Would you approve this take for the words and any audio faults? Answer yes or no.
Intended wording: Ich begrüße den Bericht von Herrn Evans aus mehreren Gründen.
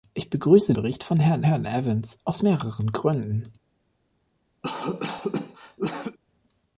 no